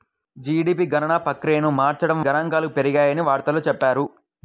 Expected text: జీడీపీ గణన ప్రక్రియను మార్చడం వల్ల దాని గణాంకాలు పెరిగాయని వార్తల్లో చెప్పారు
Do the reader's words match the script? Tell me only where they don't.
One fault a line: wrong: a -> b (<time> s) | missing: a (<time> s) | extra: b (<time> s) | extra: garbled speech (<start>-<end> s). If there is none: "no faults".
missing: వల్ల దాని (2.2 s)